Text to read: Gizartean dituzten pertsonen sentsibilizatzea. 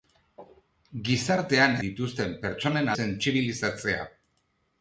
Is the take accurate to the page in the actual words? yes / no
yes